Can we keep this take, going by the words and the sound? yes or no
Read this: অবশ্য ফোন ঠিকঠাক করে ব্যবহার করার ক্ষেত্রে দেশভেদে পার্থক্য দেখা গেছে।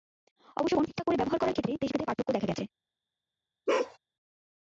no